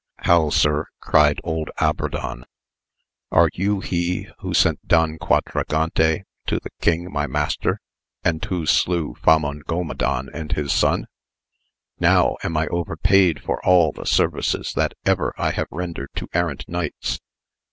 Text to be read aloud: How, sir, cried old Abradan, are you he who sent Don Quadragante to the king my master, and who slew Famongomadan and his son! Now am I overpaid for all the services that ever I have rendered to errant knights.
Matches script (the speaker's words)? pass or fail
pass